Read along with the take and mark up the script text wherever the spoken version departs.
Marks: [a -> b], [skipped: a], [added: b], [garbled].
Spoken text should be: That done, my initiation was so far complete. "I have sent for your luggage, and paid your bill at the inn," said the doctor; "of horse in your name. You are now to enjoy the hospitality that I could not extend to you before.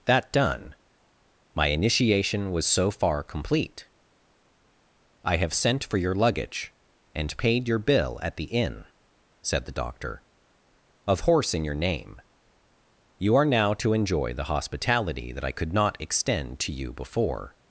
That done, my initiation was so far complete. "I have sent for your luggage, and paid your bill at the inn," said the doctor; "of horse in your name. You are now to enjoy the hospitality that I could not extend to you before.